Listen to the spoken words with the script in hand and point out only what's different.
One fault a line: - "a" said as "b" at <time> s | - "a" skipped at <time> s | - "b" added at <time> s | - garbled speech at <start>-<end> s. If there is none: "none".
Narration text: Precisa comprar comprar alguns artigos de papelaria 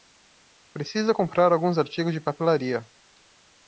- "comprar" skipped at 1.5 s